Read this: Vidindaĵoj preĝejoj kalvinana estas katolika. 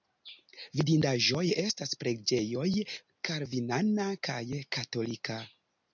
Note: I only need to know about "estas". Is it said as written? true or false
false